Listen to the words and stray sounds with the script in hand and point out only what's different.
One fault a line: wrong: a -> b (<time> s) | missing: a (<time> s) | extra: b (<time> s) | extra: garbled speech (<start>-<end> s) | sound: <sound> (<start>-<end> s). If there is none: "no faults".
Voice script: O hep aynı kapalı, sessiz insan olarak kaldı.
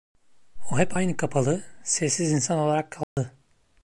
sound: dropout (3.0-3.2 s)